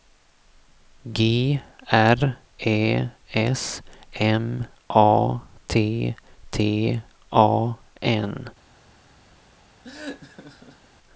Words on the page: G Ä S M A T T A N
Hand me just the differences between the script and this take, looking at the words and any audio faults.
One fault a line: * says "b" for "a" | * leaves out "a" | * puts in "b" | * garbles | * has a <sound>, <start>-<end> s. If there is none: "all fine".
* puts in "R"
* has a laugh, 9.8-10.9 s